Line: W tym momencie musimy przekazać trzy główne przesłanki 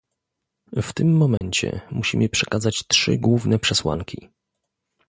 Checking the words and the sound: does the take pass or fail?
fail